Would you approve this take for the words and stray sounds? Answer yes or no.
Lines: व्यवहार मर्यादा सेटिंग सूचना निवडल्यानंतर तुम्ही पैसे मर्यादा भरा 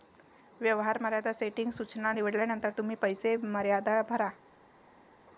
yes